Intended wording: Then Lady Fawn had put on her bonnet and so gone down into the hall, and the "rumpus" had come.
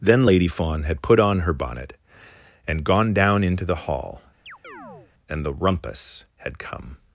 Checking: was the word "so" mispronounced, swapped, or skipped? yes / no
yes